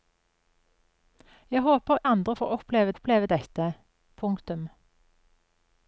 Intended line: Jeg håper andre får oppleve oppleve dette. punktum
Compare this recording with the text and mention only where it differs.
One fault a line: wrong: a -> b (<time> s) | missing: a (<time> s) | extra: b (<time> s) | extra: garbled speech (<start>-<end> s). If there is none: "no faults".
no faults